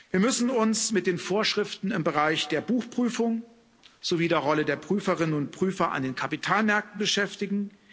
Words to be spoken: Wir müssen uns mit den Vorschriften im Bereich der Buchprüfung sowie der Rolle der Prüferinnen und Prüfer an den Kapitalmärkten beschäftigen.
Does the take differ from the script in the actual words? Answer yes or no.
no